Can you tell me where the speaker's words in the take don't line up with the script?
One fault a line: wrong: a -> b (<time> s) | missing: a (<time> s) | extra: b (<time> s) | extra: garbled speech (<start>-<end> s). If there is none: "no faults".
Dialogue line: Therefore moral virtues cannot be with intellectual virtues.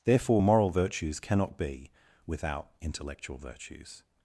wrong: with -> without (2.3 s)